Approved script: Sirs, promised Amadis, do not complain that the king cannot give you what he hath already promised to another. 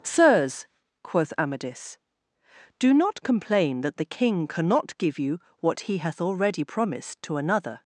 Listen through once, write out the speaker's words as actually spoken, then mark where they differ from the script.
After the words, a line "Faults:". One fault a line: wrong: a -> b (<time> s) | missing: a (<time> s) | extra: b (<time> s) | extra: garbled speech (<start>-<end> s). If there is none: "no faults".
Sirs, quoth Amadis, do not complain that the king cannot give you what he hath already promised to another.
Faults:
wrong: promised -> quoth (1.0 s)